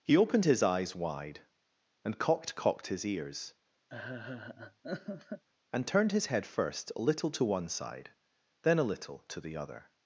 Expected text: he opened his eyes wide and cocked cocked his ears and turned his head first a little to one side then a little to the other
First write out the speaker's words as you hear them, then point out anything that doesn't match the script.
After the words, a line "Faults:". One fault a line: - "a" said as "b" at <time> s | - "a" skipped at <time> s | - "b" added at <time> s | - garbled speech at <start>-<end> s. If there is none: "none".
he opened his eyes wide and cocked cocked his ears and turned his head first a little to one side then a little to the other
Faults:
none